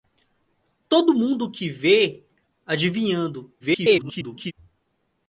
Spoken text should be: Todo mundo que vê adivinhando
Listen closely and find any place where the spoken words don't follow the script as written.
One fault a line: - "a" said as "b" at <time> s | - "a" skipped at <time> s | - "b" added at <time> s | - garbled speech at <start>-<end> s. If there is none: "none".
- garbled speech at 3.6-4.5 s